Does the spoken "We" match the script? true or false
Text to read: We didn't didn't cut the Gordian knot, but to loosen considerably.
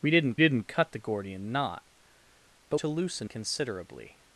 true